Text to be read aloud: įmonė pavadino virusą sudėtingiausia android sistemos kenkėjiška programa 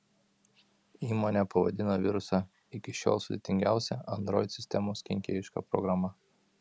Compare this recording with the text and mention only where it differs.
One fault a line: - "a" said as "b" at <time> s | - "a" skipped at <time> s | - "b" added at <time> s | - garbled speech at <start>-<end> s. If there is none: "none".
- "iki šiol" added at 2.8 s